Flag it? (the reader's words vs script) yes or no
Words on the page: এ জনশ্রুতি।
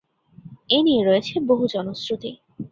yes